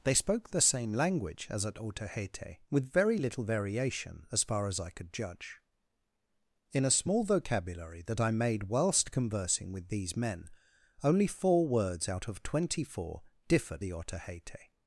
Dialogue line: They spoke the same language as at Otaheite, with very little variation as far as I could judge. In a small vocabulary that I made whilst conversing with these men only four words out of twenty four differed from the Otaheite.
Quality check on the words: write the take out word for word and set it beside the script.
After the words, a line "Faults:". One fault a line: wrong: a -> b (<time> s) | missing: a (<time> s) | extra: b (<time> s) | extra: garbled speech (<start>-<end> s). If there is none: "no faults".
They spoke the same language as at Otaheite, with very little variation as far as I could judge. In a small vocabulary that I made whilst conversing with these men only four words out of twenty four differed the Otaheite.
Faults:
missing: from (13.8 s)